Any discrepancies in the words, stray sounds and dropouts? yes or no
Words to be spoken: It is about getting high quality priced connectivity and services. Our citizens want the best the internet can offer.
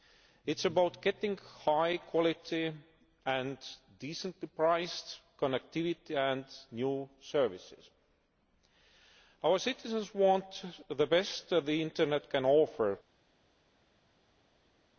yes